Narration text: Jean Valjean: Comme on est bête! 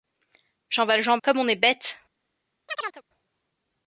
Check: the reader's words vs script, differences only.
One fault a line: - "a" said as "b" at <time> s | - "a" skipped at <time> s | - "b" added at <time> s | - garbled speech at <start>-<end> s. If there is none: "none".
none